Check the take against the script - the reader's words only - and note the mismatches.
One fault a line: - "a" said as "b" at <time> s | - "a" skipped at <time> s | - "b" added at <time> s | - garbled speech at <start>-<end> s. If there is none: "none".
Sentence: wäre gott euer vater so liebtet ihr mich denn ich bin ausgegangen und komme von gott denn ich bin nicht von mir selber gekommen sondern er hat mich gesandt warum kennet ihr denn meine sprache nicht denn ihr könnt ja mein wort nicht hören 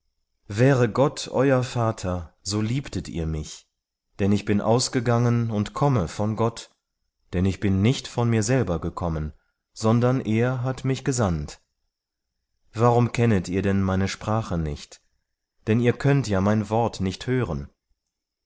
none